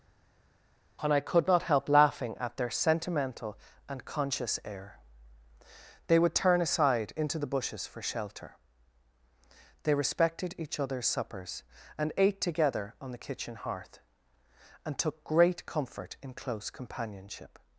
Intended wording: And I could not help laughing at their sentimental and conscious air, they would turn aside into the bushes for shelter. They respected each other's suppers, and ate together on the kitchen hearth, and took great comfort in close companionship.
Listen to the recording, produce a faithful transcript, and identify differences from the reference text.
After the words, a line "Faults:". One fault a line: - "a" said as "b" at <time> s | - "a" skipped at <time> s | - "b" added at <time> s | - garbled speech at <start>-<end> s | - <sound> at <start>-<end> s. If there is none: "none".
And I could not help laughing at their sentimental and conscious air, they would turn aside into the bushes for shelter. They respected each other's suppers, and ate together on the kitchen hearth, and took great comfort in close companionship.
Faults:
none